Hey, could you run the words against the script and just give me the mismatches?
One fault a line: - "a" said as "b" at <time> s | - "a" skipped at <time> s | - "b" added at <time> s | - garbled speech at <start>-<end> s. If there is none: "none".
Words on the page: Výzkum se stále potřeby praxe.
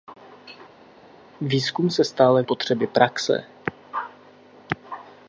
none